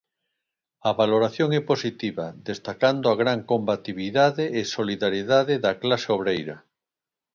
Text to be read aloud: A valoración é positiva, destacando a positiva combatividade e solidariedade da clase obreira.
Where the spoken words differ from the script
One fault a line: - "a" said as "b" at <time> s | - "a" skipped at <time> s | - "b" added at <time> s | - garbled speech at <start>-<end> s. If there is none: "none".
- "positiva" said as "gran" at 3.2 s